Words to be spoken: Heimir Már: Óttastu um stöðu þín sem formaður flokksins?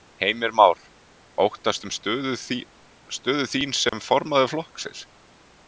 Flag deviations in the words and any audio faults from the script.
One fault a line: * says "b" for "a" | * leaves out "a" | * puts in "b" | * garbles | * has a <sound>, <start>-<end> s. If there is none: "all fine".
* has a dropout, 3.9-3.9 s